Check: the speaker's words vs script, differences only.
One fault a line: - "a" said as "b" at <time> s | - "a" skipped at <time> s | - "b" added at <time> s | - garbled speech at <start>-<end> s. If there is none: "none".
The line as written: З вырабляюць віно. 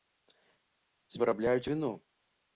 none